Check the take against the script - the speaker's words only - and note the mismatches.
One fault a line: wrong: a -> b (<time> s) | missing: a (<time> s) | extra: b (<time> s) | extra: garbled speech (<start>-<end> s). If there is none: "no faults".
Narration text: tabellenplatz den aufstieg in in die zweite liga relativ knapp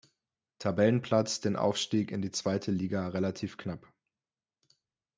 missing: in (2.2 s)